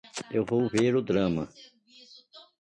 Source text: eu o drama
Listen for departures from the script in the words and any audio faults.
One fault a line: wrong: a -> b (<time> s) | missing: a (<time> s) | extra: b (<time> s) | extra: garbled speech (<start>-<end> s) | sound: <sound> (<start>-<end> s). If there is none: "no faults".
extra: vou ver (0.4 s)